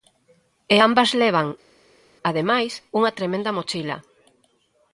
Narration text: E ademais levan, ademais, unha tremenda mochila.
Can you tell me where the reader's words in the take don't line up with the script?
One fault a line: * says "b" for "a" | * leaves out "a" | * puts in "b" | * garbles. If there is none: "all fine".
* says "ambas" for "ademais"